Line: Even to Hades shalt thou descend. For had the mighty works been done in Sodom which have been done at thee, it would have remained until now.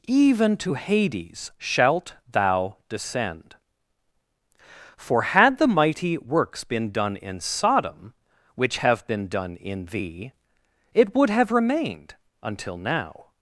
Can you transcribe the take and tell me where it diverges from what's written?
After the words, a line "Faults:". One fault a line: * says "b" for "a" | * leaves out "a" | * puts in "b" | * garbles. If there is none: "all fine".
Even to Hades shalt thou descend. For had the mighty works been done in Sodom which have been done in thee, it would have remained until now.
Faults:
* says "in" for "at"